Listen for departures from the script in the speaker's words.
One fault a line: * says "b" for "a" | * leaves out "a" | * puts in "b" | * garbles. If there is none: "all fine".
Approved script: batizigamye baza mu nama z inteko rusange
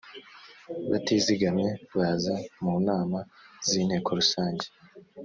all fine